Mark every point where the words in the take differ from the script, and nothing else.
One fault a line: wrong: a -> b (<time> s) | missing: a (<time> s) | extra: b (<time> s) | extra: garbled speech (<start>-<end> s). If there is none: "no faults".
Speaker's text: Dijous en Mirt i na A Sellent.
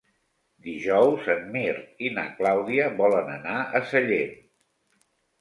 extra: Clàudia volen anar (2.4 s)